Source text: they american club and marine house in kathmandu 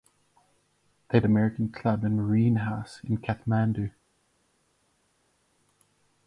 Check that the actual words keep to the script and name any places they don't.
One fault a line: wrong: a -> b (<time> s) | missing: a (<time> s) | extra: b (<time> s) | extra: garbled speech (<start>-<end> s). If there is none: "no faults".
no faults